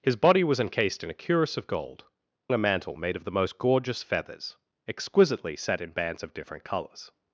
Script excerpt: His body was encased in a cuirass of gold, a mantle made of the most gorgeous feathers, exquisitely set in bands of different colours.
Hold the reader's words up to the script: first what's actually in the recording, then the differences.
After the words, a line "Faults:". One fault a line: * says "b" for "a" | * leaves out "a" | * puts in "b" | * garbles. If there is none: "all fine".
His body was encased in a cuirass of gold, a mantle made of the most gorgeous feathers, exquisitely set in bands of different colours.
Faults:
all fine